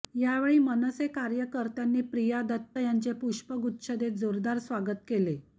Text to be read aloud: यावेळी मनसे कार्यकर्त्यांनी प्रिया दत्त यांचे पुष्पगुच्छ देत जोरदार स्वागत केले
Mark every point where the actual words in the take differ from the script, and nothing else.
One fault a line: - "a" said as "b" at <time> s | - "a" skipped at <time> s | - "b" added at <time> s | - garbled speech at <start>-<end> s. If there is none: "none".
none